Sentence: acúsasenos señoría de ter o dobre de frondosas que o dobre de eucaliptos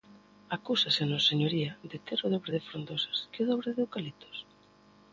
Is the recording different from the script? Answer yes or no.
no